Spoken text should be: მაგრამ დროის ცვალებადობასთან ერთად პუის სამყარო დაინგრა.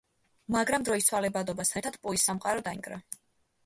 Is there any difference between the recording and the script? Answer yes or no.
no